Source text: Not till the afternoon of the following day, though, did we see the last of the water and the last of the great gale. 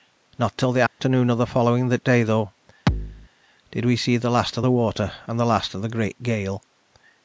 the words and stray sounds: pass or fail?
fail